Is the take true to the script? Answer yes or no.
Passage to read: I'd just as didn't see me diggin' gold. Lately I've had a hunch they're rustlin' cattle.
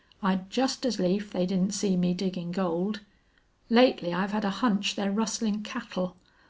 no